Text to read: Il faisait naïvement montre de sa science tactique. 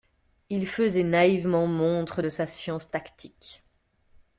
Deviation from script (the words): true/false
false